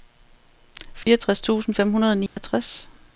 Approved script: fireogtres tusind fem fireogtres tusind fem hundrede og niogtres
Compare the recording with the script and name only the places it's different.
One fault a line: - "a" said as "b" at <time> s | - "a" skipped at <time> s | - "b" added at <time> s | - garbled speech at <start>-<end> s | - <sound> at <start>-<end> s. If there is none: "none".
- dropout at 1.0-1.1 s
- "fireogtres tusind fem" skipped at 1.9 s
- dropout at 2.3-2.4 s